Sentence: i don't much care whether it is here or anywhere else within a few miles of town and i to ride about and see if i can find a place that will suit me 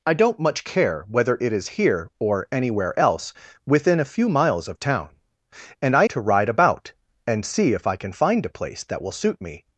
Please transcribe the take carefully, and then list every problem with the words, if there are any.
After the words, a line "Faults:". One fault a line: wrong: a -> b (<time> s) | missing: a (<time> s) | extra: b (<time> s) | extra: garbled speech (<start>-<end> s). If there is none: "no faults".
i don't much care whether it is here or anywhere else within a few miles of town and i to ride about and see if i can find a place that will suit me
Faults:
no faults